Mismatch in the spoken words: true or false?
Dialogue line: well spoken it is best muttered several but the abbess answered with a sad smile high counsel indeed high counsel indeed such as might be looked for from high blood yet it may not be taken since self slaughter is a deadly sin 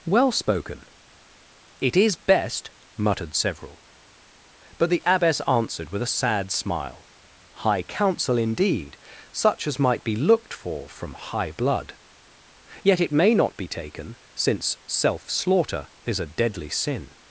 true